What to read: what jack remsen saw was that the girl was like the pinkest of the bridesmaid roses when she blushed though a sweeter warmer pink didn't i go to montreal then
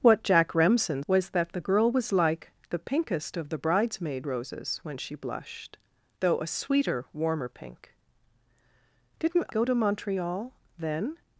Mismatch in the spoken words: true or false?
true